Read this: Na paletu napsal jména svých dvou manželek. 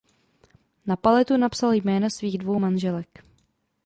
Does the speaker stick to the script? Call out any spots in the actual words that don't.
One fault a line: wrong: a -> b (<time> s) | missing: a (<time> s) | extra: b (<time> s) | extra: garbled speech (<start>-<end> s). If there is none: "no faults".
no faults